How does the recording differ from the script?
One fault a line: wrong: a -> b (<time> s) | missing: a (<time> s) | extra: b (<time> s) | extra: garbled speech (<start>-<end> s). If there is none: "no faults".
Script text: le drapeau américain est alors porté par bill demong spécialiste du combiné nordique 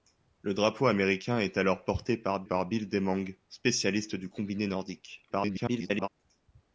extra: par (2.4 s)
extra: garbled speech (5.3-6.1 s)